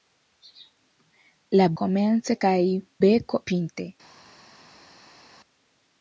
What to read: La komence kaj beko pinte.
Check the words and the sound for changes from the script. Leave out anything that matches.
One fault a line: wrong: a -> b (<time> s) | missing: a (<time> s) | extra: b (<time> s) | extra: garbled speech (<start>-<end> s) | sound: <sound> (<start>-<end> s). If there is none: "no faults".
no faults